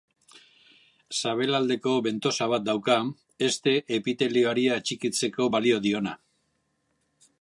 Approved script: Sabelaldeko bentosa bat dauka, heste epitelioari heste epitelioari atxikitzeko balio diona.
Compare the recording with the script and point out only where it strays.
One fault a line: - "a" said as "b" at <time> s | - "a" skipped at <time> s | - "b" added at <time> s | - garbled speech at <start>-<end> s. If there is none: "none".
- "heste epitelioari" skipped at 4.7 s